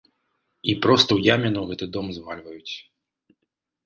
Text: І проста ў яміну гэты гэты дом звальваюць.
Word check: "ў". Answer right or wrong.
right